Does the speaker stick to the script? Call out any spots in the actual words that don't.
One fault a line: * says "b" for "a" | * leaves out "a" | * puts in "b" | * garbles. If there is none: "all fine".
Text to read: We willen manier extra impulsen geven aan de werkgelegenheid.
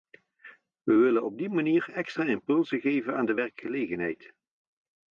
* puts in "op die"